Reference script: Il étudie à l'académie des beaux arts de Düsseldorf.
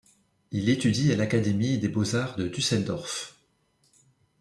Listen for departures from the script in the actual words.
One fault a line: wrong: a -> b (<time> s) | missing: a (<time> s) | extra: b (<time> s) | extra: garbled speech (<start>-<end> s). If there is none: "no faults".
no faults